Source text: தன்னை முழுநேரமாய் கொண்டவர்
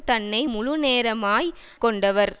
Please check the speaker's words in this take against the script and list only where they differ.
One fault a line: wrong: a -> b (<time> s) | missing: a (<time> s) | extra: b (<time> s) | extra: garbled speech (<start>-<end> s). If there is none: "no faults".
no faults